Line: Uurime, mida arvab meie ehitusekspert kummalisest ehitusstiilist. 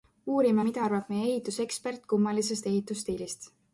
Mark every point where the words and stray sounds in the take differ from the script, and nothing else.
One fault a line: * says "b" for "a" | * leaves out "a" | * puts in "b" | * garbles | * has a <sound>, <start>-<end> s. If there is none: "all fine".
all fine